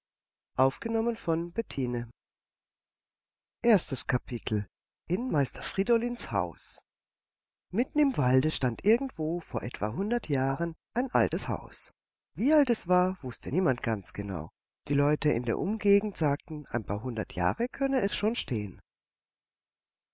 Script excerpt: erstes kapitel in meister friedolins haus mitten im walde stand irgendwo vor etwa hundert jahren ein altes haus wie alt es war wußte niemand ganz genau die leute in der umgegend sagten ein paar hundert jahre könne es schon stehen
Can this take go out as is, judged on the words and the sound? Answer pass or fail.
pass